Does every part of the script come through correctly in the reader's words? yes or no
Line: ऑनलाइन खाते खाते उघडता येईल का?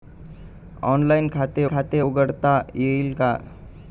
yes